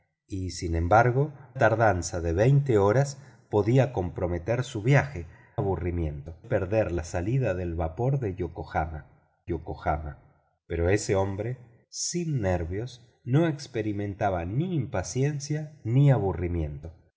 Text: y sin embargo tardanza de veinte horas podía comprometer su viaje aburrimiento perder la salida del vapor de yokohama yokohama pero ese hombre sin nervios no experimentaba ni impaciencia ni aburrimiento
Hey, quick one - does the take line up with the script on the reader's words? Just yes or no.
yes